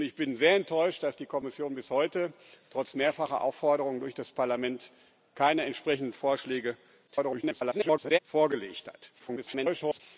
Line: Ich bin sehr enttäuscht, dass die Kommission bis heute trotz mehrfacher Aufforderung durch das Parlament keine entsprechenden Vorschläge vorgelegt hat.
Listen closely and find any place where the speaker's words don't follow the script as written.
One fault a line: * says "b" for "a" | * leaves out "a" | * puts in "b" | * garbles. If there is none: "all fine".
* garbles
* garbles